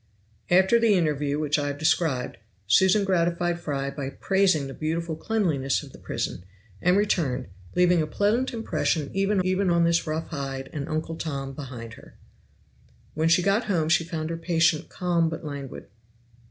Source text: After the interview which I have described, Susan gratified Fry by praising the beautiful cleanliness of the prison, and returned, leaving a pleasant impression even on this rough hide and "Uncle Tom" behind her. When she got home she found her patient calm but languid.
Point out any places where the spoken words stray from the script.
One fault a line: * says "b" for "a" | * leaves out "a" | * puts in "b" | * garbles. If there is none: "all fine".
* puts in "even"